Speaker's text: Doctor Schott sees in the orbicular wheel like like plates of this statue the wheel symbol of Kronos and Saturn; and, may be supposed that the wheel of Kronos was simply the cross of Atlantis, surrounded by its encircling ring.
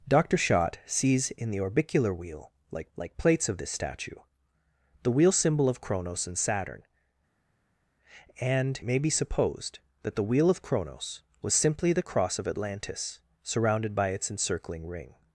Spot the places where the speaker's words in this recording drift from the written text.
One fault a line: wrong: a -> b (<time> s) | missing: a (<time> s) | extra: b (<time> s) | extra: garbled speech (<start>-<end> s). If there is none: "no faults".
no faults